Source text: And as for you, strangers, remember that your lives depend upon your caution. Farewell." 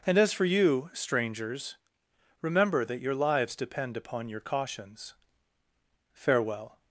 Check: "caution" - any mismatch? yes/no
yes